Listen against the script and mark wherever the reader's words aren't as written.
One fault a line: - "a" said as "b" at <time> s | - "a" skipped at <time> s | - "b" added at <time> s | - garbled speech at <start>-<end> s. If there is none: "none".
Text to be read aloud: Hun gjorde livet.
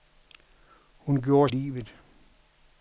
none